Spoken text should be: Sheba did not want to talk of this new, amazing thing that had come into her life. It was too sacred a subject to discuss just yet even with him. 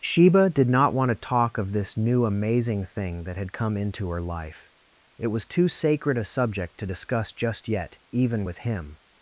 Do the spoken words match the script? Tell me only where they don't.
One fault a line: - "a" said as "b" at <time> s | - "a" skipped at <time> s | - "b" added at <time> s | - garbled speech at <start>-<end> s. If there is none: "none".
none